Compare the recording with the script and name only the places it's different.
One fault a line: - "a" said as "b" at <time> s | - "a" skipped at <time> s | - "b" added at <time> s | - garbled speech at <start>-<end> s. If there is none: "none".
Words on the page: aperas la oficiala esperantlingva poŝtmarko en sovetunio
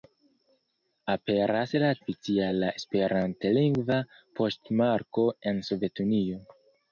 none